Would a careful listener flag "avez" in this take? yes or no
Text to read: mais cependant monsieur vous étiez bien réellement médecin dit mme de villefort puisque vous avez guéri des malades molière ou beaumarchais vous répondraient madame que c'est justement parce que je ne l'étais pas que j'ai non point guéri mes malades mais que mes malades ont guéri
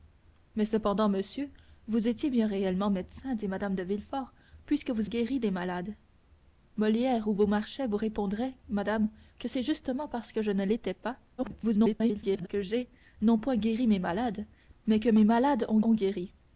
yes